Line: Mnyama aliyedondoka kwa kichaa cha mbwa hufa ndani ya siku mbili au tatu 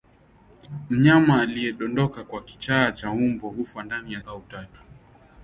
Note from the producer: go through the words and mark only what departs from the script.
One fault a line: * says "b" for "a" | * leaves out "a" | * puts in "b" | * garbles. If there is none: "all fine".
* leaves out "siku mbili"